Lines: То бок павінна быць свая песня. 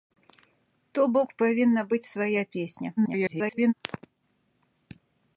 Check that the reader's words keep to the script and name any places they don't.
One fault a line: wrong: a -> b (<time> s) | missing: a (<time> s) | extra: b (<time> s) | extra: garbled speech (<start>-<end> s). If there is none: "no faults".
extra: garbled speech (3.0-3.7 s)